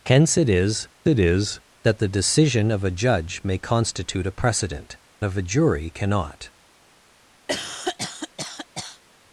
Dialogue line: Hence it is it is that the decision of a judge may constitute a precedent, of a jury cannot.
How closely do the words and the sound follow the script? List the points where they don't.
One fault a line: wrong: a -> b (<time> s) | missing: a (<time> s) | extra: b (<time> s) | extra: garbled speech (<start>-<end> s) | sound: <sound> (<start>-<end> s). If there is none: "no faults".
sound: cough (7.5-9.0 s)